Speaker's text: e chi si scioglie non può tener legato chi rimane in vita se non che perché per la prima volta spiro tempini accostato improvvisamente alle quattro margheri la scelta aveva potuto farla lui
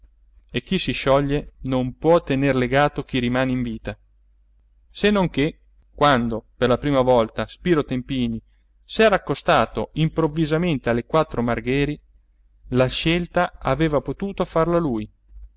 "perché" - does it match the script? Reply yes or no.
no